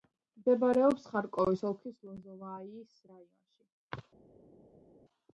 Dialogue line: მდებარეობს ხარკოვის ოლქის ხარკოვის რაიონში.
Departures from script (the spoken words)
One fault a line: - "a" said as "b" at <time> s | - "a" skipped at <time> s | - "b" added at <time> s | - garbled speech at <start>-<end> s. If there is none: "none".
- "ხარკოვის" said as "ლოზოვაიის" at 2.1 s